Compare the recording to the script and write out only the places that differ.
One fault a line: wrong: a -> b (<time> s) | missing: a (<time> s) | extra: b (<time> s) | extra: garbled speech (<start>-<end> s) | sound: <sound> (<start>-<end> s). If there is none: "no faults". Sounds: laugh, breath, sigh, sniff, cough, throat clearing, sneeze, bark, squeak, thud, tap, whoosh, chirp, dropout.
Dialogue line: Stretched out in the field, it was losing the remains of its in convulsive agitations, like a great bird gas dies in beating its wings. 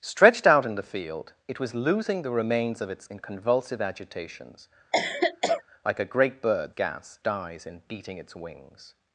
sound: cough (4.9-5.6 s)